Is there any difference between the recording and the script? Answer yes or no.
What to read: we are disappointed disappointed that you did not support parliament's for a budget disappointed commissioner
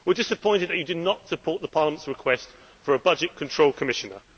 yes